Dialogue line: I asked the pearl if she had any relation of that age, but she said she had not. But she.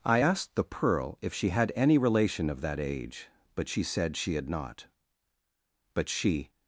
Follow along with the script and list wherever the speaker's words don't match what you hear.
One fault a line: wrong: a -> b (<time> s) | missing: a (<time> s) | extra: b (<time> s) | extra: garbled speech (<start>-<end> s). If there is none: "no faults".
no faults